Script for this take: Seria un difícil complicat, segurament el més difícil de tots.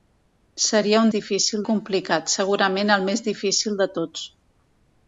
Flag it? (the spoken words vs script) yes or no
no